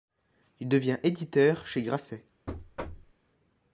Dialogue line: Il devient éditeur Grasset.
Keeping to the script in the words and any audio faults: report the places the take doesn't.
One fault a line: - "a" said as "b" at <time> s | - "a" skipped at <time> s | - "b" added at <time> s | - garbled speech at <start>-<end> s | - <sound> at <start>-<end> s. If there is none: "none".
- "chez" added at 1.7 s
- thud at 2.5-3.1 s